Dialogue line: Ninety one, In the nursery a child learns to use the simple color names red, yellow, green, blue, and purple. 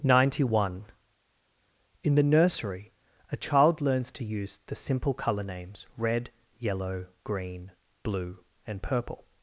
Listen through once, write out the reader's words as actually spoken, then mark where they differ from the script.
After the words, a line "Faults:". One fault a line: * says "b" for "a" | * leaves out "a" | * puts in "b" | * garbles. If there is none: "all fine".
Ninety one, In the nursery a child learns to use the simple color names red, yellow, green, blue, and purple.
Faults:
all fine